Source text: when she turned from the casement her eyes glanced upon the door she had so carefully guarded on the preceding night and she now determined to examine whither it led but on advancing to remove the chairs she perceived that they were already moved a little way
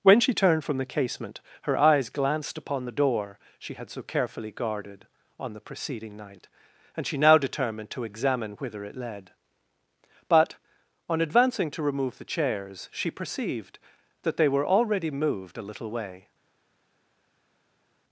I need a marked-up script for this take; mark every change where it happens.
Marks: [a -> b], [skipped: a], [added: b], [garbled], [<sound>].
when she turned from the casement her eyes glanced upon the door she had so carefully guarded on the preceding night and she now determined to examine whither it led but on advancing to remove the chairs she perceived that they were already moved a little way